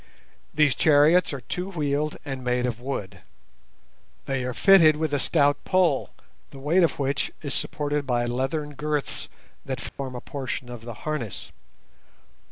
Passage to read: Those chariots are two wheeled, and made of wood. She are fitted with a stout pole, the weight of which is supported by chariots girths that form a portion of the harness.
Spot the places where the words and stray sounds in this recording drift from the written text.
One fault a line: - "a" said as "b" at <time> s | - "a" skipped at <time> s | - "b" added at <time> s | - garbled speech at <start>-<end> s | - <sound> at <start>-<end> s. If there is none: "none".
- "Those" said as "These" at 0.5 s
- "She" said as "They" at 4.2 s
- "chariots" said as "leathern" at 8.2 s
- dropout at 9.9-10.0 s